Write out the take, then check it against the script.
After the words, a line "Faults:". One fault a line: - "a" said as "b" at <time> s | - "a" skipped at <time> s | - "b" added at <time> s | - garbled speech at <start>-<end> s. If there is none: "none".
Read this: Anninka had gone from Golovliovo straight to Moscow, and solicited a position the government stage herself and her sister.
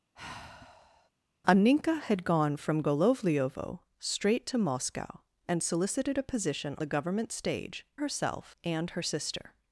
Anninka had gone from Golovliovo straight to Moscow, and solicited a position the government stage herself and her sister.
Faults:
none